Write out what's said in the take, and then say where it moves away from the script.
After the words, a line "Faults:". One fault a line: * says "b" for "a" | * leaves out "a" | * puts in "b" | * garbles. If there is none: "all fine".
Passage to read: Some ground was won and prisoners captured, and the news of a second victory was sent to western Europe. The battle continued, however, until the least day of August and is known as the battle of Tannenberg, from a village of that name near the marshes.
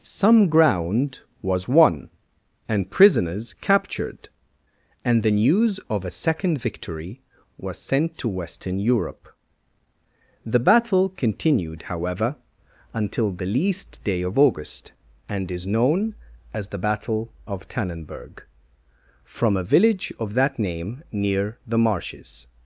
Some ground was won and prisoners captured, and the news of a second victory was sent to western Europe. The battle continued, however, until the least day of August and is known as the battle of Tannenberg, from a village of that name near the marshes.
Faults:
all fine